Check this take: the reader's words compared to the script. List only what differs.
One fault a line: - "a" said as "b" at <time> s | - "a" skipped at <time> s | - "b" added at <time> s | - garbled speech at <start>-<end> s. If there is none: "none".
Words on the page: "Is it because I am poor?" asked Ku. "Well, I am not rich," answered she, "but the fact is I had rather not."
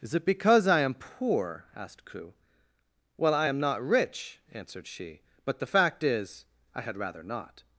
none